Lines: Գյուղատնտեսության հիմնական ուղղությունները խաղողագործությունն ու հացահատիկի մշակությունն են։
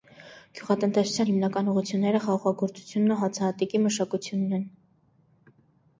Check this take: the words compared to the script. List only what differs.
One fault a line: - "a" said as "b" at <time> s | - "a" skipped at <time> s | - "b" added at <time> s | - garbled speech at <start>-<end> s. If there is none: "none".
none